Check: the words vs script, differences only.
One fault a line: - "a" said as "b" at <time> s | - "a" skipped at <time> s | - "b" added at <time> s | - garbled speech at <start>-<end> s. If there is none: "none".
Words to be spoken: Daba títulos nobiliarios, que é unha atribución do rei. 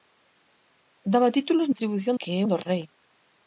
- "nobiliarios" said as "atribución" at 1.7 s
- "unha atribución" skipped at 2.4 s